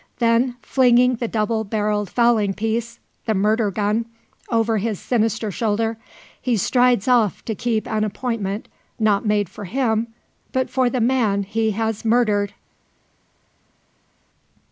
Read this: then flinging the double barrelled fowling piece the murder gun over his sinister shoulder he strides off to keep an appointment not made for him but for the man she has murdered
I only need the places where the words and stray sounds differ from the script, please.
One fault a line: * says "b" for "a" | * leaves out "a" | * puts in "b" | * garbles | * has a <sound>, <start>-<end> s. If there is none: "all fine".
* says "he" for "she"